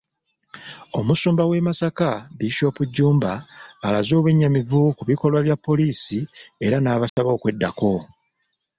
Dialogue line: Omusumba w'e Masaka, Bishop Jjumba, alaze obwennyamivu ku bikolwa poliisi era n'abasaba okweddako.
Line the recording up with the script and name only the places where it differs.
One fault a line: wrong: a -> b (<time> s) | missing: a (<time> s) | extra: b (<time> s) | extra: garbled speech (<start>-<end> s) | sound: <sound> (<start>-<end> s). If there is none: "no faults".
extra: bya (5.5 s)
sound: dropout (7.1-7.2 s)